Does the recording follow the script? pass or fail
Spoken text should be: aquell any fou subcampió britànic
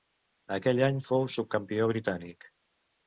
pass